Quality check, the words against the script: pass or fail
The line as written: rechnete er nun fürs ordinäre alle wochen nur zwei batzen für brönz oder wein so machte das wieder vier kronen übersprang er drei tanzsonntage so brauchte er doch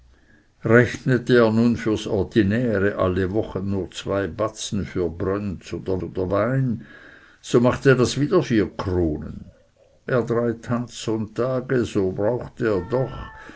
fail